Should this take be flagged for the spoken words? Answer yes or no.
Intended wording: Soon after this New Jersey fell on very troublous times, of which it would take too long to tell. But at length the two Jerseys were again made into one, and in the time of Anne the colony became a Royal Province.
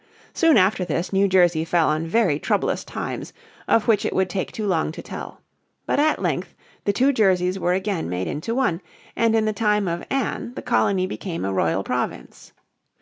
no